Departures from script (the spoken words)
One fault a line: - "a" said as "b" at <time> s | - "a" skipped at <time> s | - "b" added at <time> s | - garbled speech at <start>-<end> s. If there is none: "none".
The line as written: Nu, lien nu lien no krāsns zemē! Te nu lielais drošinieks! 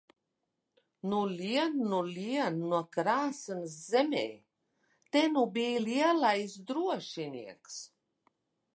- "bij" added at 5.6 s